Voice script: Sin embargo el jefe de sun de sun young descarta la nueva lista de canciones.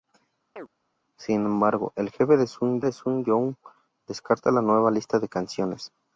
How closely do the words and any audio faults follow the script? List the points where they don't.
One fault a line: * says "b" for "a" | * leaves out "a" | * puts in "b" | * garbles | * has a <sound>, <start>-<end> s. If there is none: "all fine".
* has a chirp, 0.6-0.7 s